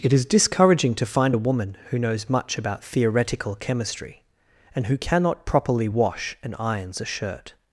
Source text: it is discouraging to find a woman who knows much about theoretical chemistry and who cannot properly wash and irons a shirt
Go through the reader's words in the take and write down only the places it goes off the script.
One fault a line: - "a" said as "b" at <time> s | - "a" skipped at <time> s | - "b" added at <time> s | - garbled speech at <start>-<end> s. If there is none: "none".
none